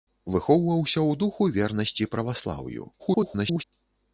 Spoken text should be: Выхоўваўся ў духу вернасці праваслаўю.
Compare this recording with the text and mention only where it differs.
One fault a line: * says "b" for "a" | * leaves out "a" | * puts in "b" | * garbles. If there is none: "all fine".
* garbles